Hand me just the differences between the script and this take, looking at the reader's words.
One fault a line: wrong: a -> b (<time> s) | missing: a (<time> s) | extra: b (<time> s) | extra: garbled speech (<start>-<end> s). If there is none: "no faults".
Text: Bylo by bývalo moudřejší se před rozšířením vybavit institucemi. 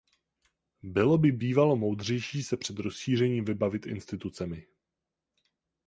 no faults